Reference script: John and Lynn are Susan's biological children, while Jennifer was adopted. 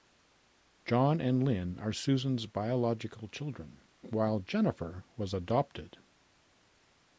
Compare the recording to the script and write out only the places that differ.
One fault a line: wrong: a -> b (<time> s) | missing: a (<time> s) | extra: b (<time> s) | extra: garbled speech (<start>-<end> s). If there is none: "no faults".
no faults